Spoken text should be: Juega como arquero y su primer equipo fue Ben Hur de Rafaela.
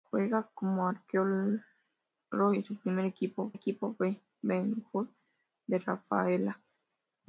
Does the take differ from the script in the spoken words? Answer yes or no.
yes